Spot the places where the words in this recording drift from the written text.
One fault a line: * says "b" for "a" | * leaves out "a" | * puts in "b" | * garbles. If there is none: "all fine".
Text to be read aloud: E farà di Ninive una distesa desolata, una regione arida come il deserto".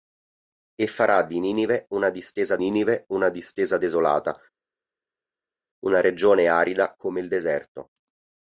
* puts in "Ninive una distesa"